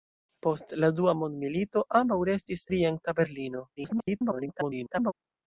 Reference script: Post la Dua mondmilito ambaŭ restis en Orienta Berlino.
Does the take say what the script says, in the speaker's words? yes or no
no